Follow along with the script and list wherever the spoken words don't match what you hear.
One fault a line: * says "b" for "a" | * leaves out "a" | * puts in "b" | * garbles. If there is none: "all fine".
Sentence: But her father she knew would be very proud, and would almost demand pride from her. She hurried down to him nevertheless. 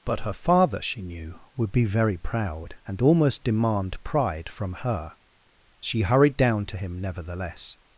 * leaves out "would"